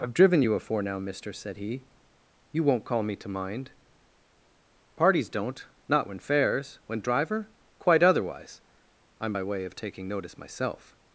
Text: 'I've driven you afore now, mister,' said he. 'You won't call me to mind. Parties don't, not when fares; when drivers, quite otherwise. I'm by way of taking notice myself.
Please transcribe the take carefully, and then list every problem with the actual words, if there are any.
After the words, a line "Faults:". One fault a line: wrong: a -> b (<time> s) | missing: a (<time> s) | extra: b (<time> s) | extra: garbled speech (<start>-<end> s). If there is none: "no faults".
'I've driven you afore now, mister,' said he. 'You won't call me to mind. Parties don't, not when fares; when driver, quite otherwise. I'm by way of taking notice myself.
Faults:
wrong: drivers -> driver (7.0 s)